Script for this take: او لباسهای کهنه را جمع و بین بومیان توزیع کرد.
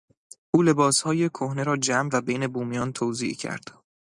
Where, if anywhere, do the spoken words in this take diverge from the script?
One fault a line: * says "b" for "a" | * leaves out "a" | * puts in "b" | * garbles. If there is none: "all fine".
all fine